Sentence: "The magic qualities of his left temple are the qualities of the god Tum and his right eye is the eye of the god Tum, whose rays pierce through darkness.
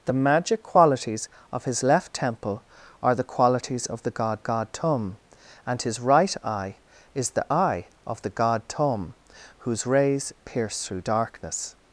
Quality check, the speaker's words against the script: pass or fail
fail